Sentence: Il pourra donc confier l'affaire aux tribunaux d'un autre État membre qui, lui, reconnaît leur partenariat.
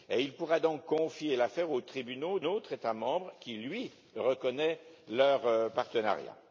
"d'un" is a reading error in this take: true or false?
true